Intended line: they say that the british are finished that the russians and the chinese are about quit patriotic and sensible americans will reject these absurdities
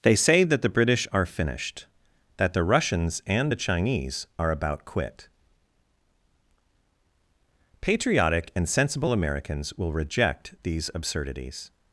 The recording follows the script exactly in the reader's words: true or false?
true